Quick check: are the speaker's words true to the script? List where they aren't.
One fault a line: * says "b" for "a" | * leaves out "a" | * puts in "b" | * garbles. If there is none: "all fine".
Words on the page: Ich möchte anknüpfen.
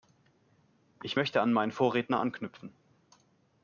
* puts in "an meinen Vorredner"